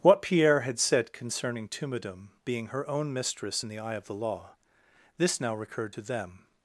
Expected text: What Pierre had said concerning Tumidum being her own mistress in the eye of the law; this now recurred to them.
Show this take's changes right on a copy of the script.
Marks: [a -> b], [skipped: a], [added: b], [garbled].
What Pierre had said concerning Tumidum being her own mistress in the eye of the law; this now recurred to them.